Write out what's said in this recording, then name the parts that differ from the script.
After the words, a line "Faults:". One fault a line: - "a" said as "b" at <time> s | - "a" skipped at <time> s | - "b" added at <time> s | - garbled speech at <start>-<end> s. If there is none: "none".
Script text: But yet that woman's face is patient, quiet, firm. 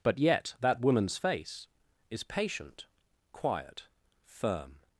But yet that woman's face is patient, quiet, firm.
Faults:
none